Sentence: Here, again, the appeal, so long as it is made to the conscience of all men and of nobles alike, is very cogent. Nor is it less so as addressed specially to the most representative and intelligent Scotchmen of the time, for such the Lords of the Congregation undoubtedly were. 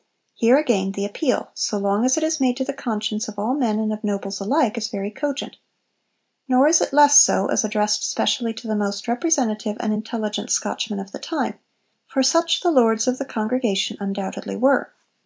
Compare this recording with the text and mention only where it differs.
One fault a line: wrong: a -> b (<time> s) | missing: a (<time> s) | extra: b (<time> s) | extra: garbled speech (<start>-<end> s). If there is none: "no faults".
no faults